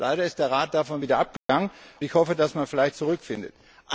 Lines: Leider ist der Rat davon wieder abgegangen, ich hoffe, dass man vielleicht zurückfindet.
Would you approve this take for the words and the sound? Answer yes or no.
no